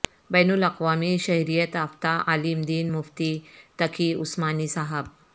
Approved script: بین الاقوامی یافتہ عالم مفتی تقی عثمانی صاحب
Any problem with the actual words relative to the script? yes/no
yes